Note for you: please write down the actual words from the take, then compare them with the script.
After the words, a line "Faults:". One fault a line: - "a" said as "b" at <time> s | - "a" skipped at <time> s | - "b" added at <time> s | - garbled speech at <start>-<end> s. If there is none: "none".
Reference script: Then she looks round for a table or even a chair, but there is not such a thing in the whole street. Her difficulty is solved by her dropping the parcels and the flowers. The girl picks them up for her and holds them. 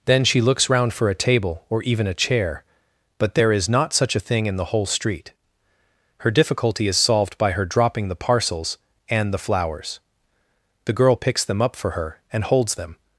Then she looks round for a table or even a chair, but there is not such a thing in the whole street. Her difficulty is solved by her dropping the parcels and the flowers. The girl picks them up for her and holds them.
Faults:
none